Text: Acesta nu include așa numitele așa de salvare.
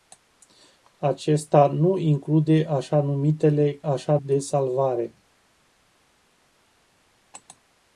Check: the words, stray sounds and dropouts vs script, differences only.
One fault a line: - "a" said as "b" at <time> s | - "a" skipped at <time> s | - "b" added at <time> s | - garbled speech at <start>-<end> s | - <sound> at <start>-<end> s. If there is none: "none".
none